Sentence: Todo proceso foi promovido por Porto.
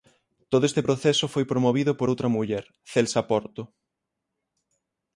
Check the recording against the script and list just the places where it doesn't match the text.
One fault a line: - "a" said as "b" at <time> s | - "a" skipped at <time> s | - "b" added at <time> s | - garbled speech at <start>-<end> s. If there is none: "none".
- "este" added at 0.7 s
- "outra muller Celsa" added at 2.1 s